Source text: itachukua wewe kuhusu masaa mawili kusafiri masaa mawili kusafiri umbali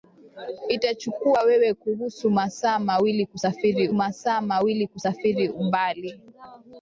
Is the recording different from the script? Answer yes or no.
no